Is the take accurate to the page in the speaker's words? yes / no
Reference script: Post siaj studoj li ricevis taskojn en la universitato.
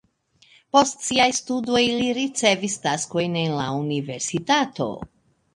yes